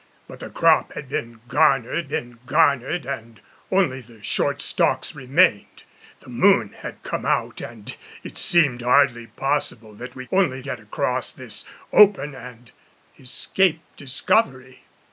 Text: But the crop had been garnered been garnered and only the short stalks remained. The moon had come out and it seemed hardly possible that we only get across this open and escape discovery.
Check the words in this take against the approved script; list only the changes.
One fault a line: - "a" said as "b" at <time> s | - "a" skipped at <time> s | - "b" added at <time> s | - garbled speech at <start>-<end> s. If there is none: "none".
none